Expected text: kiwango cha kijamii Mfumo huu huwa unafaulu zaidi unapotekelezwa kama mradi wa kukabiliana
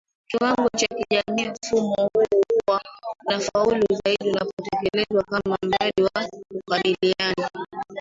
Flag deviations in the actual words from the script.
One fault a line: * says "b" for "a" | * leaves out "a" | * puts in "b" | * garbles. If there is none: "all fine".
all fine